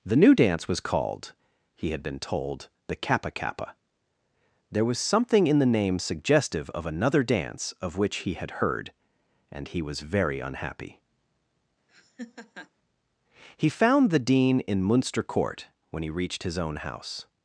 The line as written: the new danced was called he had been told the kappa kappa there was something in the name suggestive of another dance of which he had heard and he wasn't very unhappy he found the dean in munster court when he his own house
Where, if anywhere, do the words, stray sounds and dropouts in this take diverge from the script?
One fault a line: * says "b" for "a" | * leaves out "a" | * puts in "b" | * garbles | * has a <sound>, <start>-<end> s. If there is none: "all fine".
* says "dance" for "danced"
* says "was" for "wasn't"
* has a laugh, 11.9-12.7 s
* puts in "reached"